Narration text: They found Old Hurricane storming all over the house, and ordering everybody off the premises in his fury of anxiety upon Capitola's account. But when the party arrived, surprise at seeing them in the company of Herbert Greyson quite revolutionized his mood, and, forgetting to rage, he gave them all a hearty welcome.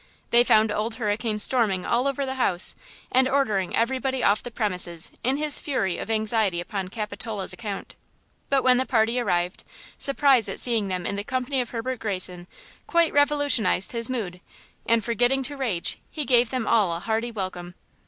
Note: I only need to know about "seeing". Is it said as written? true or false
true